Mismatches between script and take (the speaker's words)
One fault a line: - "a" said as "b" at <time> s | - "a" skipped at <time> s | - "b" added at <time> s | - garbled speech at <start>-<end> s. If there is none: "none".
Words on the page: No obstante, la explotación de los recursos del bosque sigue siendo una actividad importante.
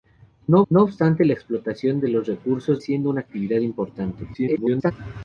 - "no" added at 0.7 s
- "del bosque sigue" skipped at 2.8 s
- garbled speech at 4.3-4.9 s